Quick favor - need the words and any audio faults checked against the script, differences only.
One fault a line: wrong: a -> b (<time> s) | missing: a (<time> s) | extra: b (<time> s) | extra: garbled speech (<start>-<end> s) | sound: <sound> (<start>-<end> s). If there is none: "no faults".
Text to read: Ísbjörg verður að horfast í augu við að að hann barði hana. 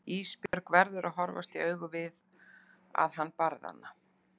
sound: dropout (0.5-0.5 s)
missing: að (3.2 s)